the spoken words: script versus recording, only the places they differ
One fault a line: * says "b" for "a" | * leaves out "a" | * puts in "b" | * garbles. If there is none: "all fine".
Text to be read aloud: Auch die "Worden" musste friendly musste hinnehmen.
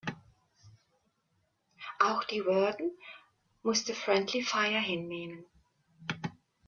* says "fire" for "musste"